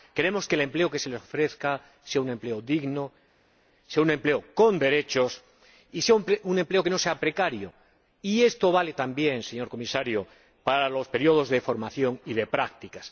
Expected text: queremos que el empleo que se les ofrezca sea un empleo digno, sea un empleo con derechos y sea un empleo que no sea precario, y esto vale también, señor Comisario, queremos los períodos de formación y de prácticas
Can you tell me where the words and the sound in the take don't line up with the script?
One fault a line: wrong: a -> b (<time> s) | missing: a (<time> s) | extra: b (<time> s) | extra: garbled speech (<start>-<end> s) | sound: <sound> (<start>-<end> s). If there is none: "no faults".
wrong: queremos -> para (10.6 s)